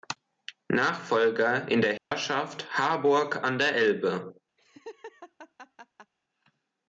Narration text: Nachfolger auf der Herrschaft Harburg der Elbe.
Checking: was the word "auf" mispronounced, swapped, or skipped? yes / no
yes